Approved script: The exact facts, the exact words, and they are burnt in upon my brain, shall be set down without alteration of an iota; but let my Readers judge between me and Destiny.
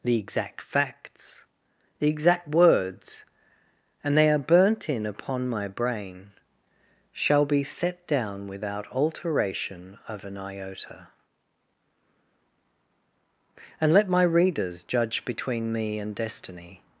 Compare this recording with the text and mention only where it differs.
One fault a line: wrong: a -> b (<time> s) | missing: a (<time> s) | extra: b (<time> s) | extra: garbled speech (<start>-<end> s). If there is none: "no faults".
wrong: but -> and (13.8 s)